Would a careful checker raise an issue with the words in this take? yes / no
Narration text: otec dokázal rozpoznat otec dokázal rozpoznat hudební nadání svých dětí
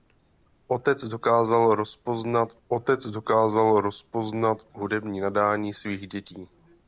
no